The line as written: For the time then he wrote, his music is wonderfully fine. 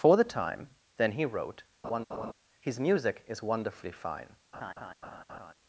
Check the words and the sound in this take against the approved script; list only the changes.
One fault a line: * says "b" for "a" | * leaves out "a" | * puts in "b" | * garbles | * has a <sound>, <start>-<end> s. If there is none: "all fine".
* has a laugh, 1.8-2.3 s
* has a laugh, 4.5-5.5 s